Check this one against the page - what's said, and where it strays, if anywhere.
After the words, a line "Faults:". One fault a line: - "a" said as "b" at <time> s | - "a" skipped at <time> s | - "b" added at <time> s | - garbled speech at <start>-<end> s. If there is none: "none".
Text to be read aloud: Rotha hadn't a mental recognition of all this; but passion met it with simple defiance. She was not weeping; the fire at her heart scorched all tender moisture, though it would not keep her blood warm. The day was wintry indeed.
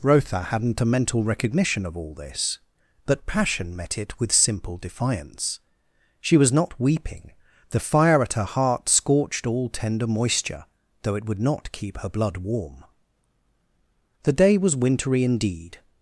Rotha hadn't a mental recognition of all this; but passion met it with simple defiance. She was not weeping; the fire at her heart scorched all tender moisture, though it would not keep her blood warm. The day was wintry indeed.
Faults:
none